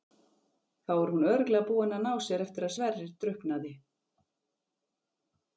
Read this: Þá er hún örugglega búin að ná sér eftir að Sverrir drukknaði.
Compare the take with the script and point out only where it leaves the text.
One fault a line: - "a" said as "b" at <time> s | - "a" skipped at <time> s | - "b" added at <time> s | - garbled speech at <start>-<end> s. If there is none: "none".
none